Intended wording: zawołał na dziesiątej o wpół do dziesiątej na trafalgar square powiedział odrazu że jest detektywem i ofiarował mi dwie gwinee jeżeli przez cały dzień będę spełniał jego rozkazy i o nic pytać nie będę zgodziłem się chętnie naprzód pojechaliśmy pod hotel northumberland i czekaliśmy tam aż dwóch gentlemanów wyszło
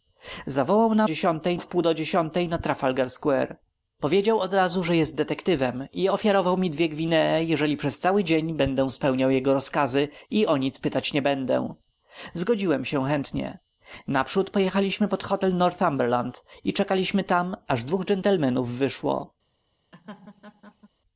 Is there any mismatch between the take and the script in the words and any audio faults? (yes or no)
yes